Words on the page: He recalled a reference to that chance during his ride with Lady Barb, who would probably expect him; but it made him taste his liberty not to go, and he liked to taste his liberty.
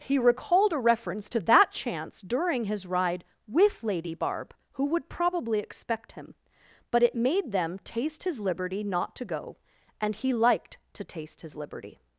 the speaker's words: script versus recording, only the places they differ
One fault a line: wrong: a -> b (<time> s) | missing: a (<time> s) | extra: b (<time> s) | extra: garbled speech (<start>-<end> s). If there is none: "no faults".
wrong: him -> them (7.5 s)